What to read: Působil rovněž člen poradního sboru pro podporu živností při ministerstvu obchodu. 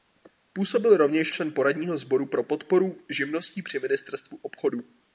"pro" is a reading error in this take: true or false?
false